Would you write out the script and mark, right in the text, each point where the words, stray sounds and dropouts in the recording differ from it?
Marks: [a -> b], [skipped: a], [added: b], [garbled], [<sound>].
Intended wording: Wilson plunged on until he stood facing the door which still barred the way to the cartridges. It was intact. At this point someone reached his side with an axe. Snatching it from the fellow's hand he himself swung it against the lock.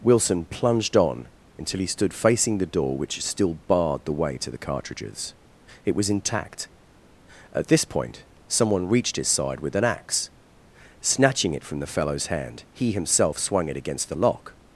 Wilson plunged on until he stood facing the door which still barred the way to the cartridges. It was intact. At this point someone reached his side with an axe. Snatching it from the fellow's hand he himself swung it against the lock.